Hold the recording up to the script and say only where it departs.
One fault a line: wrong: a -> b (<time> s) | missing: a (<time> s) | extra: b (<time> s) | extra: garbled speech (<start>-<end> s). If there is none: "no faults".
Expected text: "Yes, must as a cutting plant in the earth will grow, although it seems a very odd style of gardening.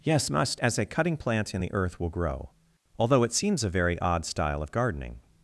no faults